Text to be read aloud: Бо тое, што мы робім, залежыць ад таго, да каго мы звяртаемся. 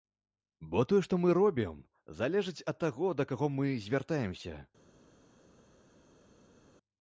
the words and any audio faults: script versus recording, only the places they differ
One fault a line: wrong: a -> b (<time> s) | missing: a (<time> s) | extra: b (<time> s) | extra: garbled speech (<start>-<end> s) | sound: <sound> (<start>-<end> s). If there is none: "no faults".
no faults